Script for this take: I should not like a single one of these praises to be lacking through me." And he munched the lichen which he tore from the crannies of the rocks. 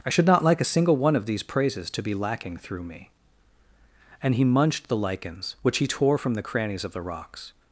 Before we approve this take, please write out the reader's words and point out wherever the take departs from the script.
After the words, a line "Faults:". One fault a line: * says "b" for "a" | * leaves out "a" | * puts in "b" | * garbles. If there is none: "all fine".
I should not like a single one of these praises to be lacking through me." And he munched the lichens which he tore from the crannies of the rocks.
Faults:
* says "lichens" for "lichen"